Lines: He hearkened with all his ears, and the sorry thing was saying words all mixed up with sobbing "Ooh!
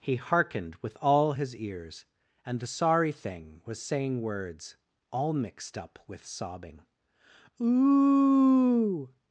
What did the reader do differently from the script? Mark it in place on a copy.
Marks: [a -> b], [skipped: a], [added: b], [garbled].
He hearkened with all his ears, and the sorry thing was saying words all mixed up with sobbing "Ooh!